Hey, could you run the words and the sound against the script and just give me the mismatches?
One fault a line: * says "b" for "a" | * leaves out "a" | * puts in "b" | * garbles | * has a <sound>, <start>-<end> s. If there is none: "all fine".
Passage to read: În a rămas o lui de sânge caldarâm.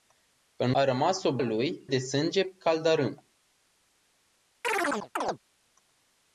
* has a chirp, 4.6-5.4 s